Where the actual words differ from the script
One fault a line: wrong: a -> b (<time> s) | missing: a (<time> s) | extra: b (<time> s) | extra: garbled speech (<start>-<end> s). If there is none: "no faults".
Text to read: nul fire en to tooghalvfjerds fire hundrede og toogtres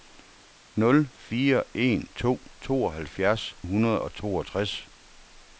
missing: fire (3.5 s)